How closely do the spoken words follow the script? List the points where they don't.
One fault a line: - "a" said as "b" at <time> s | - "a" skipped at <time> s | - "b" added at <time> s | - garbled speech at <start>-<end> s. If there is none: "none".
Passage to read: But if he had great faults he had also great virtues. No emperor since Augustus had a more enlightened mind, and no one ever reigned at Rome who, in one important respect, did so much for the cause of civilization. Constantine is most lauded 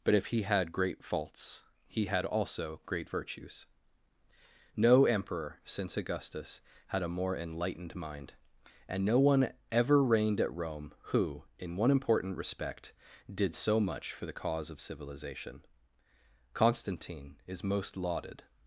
none